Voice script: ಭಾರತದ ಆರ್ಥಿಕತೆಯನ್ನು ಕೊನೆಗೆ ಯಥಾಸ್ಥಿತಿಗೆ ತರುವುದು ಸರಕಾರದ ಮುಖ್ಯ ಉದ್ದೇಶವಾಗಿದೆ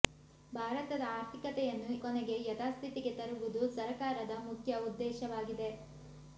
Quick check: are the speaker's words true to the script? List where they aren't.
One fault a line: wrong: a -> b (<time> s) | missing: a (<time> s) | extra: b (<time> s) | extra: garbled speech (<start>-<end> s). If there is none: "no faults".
no faults